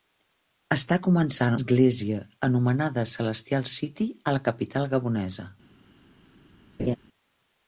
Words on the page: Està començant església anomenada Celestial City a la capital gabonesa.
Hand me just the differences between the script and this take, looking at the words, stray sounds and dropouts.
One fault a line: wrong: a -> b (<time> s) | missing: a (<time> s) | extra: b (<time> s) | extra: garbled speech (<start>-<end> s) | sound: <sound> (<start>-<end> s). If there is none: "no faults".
sound: laugh (6.8-7.0 s)